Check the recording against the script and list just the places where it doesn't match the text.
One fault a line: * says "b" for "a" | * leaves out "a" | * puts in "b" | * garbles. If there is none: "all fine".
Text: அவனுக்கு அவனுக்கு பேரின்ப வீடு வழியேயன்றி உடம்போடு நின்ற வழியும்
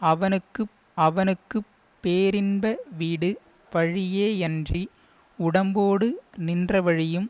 all fine